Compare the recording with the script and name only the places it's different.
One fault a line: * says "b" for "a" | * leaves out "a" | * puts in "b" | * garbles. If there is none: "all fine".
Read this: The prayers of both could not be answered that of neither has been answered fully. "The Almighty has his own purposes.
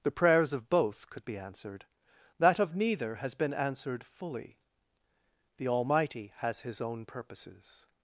* leaves out "not"